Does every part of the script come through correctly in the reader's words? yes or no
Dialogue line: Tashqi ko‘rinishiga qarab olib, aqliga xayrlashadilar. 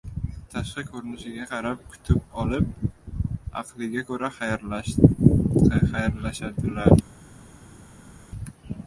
no